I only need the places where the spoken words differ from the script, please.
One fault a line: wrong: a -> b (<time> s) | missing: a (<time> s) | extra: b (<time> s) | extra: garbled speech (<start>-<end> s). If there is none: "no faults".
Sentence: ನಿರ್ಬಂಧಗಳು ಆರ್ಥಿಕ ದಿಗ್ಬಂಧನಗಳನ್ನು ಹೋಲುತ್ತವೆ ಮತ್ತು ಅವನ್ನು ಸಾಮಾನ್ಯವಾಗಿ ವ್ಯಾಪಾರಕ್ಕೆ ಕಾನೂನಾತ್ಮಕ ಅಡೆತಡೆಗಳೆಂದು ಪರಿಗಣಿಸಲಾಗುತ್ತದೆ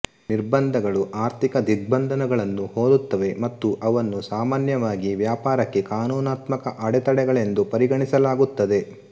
no faults